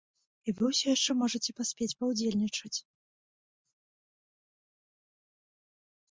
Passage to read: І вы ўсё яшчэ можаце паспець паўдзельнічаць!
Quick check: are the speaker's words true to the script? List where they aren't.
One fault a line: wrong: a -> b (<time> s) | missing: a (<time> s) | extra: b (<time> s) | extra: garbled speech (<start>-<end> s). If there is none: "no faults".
no faults